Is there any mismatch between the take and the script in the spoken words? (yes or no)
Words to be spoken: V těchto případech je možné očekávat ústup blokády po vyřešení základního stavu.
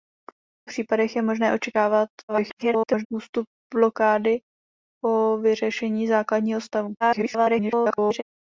yes